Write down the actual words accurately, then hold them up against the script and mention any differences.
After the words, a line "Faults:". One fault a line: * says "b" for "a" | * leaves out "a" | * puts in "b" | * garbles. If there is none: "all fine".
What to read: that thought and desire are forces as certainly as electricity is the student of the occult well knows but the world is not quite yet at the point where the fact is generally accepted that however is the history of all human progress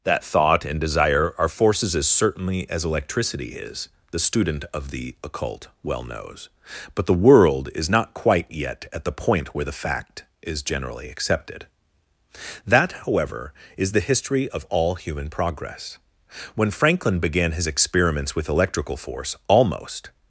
that thought and desire are forces as certainly as electricity is the student of the occult well knows but the world is not quite yet at the point where the fact is generally accepted that however is the history of all human progress when franklin began his experiments with electrical force almost
Faults:
* puts in "when franklin began his experiments with electrical force almost"